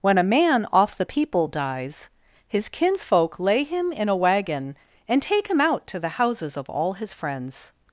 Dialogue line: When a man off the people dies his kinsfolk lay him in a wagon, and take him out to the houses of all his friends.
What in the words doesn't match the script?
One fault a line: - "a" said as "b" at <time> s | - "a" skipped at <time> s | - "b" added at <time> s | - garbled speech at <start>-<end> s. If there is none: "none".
none